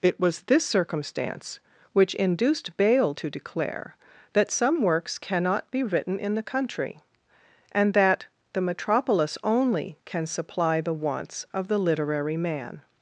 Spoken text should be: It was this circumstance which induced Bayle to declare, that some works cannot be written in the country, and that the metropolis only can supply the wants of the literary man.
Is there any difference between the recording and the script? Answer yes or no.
no